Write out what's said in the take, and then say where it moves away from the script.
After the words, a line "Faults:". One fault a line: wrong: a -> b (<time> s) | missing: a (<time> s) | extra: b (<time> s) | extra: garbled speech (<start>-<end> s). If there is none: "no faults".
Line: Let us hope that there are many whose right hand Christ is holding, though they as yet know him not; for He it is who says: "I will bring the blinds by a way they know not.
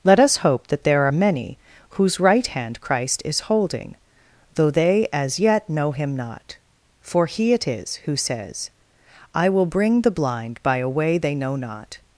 Let us hope that there are many whose right hand Christ is holding, though they as yet know him not; for He it is who says: "I will bring the blind by a way they know not.
Faults:
wrong: blinds -> blind (10.1 s)